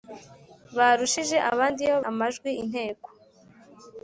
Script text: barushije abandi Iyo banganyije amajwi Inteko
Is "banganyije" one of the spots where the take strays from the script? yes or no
yes